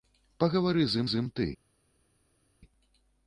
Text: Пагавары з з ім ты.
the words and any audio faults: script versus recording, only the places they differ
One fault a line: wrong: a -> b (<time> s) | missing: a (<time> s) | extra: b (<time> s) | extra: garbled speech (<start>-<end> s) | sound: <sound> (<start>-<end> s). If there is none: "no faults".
no faults